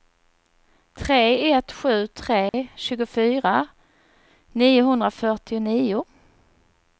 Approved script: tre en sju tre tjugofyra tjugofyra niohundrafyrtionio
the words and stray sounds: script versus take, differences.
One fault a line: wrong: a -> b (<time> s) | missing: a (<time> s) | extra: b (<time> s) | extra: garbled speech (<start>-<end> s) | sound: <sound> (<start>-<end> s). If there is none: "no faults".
wrong: en -> ett (1.5 s)
sound: dropout (2.5-2.5 s)
missing: tjugofyra (3.7 s)